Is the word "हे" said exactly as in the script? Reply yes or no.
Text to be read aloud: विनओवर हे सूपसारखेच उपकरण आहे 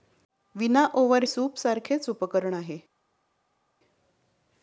no